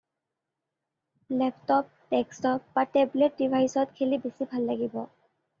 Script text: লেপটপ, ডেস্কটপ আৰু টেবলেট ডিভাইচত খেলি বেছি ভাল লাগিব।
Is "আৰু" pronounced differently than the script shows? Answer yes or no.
yes